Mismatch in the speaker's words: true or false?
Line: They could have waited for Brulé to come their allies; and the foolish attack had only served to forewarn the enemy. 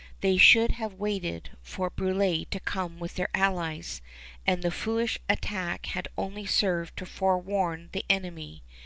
true